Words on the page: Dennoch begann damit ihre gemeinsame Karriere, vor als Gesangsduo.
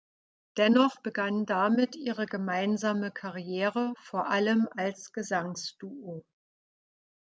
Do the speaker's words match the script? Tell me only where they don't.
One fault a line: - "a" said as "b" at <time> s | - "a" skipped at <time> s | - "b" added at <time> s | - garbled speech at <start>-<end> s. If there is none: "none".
- "allem" added at 4.3 s